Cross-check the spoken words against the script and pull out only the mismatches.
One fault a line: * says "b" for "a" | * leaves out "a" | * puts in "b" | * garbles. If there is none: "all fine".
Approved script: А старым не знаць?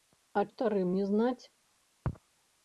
all fine